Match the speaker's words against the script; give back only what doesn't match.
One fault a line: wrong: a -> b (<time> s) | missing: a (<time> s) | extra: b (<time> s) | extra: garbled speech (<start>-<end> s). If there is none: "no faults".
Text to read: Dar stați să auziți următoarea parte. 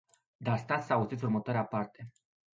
no faults